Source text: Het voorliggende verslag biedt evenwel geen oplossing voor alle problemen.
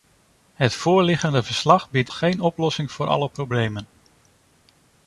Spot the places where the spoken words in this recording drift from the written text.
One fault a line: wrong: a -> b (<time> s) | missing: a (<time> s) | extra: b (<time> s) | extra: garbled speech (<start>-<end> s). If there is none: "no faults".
missing: evenwel (2.1 s)